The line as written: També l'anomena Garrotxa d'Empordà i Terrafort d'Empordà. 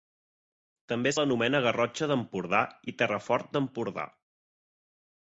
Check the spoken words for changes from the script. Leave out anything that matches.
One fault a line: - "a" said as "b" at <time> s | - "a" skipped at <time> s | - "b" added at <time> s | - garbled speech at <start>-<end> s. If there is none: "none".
none